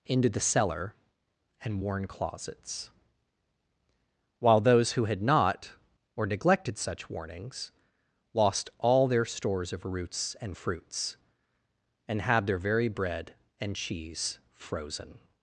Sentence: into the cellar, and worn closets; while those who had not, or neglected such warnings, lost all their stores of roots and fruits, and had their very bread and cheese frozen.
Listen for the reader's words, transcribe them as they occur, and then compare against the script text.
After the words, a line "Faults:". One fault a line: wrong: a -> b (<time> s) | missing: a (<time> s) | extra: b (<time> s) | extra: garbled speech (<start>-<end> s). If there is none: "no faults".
into the cellar, and worn closets; while those who had not, or neglected such warnings, lost all their stores of roots and fruits, and had their very bread and cheese frozen.
Faults:
no faults